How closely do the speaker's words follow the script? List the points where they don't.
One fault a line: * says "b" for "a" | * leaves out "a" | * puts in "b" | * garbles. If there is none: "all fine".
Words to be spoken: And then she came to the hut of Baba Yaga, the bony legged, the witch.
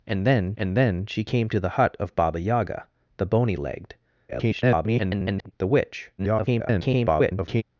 * puts in "and then"
* garbles
* garbles